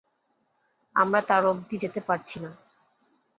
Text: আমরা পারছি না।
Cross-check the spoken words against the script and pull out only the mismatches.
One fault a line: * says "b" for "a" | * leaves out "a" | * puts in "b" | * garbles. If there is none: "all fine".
* puts in "তার অব্ধি যেতে"